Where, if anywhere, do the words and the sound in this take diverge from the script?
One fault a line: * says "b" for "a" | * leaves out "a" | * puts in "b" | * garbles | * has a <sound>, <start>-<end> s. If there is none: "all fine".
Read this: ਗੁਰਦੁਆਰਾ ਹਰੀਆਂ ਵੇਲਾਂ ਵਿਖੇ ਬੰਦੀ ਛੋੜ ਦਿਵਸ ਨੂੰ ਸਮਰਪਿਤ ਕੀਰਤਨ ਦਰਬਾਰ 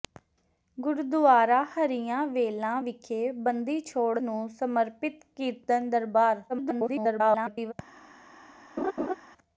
* leaves out "ਦਿਵਸ"
* garbles
* has a laugh, 8.8-9.1 s